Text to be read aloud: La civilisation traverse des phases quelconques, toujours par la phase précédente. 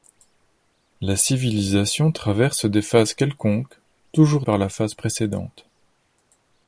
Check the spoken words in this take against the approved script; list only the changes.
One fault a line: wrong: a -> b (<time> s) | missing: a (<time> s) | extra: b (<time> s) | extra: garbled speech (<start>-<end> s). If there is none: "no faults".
no faults